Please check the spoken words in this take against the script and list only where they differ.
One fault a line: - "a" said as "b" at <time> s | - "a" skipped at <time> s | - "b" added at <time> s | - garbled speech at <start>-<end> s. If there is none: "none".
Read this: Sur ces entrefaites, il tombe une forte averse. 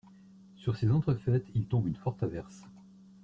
none